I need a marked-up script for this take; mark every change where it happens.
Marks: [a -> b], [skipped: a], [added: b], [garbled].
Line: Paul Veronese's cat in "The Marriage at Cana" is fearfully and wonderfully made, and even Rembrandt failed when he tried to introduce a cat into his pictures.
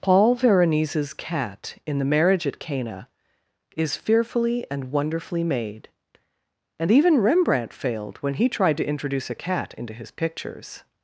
Paul Veronese's cat in "The Marriage at Cana" is fearfully and wonderfully made, and even Rembrandt failed when he tried to introduce a cat into his pictures.